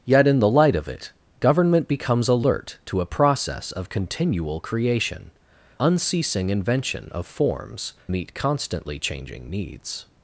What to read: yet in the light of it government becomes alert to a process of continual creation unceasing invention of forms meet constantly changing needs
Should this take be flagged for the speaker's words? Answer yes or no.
no